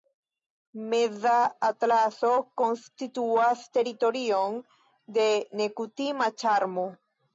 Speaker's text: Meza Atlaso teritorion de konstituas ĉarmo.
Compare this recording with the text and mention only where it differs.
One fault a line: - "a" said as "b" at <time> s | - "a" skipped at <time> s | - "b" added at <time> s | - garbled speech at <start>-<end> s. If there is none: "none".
- "konstituas" added at 2.6 s
- "konstituas" said as "nekutima" at 5.6 s